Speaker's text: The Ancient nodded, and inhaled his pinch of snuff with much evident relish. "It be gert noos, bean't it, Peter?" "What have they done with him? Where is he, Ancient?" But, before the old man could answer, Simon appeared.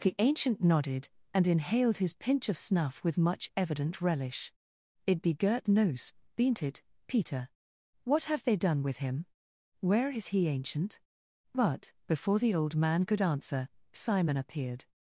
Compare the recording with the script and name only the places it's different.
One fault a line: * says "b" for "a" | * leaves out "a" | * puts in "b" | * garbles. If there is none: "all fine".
all fine